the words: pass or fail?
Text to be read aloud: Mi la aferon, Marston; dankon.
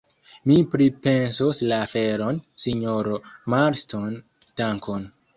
fail